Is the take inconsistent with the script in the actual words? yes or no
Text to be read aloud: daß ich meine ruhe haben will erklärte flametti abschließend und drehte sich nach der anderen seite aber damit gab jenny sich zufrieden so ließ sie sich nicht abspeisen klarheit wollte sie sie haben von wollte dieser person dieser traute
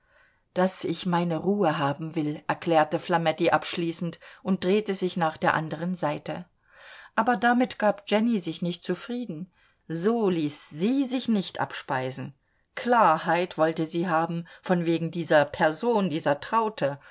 yes